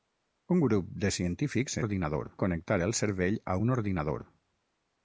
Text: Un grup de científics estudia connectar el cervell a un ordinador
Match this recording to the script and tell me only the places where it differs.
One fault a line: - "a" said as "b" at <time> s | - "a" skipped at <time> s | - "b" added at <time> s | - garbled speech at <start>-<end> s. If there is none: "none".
- "estudia" said as "ordinador" at 1.8 s